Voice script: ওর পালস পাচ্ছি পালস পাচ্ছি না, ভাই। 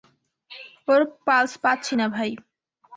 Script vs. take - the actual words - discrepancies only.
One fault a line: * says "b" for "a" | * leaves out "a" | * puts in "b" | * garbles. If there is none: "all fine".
* leaves out "পালস পাচ্ছি"